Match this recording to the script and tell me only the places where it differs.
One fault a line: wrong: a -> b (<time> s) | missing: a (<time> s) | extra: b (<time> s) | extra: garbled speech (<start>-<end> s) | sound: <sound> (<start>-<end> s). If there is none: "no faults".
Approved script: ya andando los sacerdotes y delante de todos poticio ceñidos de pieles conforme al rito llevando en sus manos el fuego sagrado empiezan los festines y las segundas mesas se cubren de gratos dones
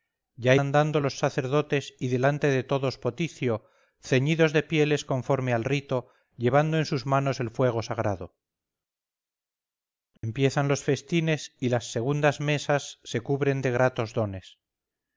sound: dropout (10.2-10.2 s)